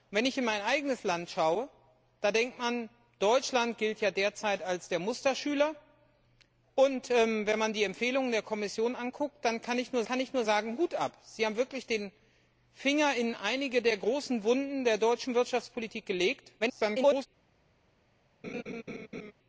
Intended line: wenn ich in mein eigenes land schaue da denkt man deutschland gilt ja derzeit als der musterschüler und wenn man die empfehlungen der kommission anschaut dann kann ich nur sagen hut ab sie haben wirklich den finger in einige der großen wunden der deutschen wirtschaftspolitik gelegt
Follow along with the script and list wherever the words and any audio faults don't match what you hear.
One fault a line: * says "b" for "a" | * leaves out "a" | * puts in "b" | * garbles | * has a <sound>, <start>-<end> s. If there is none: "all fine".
* puts in "kann ich nur"
* garbles
* has a laugh, 18.4-19.3 s